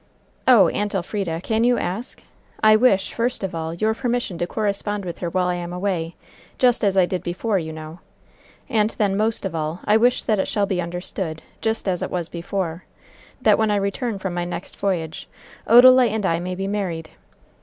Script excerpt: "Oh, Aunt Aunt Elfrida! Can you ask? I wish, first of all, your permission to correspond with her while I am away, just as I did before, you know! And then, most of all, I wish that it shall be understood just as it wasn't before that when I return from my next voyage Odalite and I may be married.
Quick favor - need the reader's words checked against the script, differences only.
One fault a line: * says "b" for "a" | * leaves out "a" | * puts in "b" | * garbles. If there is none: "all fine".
* leaves out "Aunt"
* says "was" for "wasn't"